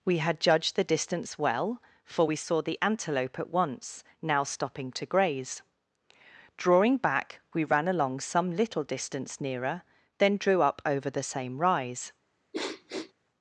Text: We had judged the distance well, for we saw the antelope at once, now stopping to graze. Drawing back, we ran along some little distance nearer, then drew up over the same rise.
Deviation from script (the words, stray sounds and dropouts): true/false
true